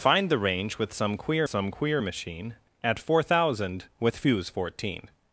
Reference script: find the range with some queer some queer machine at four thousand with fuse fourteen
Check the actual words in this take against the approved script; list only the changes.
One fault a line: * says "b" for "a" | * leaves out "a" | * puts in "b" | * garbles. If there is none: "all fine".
all fine